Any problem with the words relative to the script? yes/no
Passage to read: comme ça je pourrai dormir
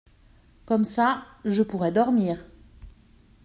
no